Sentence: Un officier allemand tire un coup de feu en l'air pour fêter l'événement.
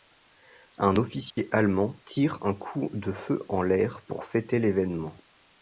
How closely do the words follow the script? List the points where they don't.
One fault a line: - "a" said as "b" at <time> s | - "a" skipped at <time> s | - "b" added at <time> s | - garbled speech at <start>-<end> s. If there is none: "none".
none